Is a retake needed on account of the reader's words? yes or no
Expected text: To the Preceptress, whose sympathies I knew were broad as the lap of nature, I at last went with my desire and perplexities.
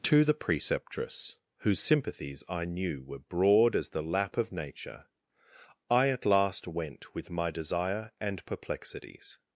no